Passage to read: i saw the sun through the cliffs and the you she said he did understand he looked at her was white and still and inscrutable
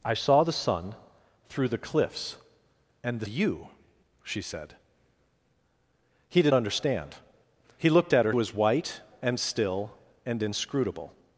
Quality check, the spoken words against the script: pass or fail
pass